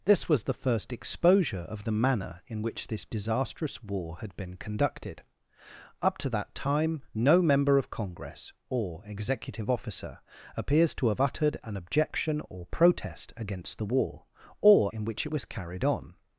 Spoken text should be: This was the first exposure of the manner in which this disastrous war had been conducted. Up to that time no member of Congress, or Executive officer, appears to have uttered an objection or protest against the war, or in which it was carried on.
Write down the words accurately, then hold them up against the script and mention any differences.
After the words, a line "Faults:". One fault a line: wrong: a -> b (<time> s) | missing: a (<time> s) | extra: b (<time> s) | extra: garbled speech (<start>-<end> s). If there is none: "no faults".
This was the first exposure of the manner in which this disastrous war had been conducted. Up to that time no member of Congress, or Executive officer, appears to have uttered an objection or protest against the war, or in which it was carried on.
Faults:
no faults